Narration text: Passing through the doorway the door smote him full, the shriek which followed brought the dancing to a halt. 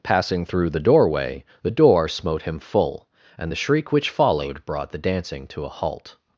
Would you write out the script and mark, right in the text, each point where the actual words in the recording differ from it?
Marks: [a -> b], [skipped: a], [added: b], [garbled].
Passing through the doorway the door smote him full, [added: and] the shriek which followed brought the dancing to a halt.